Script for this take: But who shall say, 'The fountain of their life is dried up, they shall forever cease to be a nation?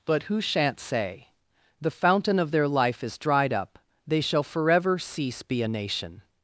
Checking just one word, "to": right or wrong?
wrong